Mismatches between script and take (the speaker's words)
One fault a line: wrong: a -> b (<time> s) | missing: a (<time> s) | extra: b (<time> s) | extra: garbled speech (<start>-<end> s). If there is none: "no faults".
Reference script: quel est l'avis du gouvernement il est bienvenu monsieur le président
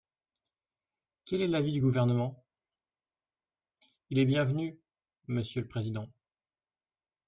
no faults